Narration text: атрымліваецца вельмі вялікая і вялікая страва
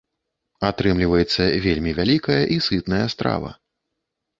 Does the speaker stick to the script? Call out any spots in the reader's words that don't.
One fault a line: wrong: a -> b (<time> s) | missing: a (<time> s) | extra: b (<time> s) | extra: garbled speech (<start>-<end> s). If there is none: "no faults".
wrong: вялікая -> сытная (2.7 s)